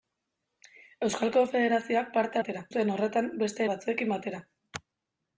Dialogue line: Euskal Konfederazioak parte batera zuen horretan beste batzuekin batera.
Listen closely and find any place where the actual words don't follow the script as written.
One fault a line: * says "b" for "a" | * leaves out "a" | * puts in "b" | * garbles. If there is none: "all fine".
all fine